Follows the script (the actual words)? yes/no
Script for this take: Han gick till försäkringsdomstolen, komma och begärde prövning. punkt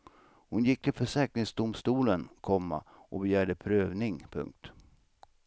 no